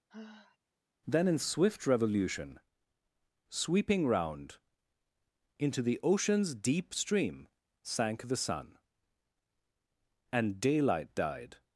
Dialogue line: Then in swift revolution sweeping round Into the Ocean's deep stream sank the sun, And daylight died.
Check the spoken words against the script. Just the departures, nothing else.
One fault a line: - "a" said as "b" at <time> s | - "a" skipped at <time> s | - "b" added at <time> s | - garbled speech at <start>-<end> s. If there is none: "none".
none